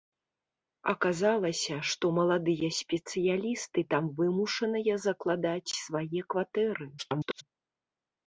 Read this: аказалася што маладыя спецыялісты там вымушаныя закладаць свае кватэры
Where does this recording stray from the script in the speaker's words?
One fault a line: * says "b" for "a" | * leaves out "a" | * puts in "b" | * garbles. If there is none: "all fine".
* garbles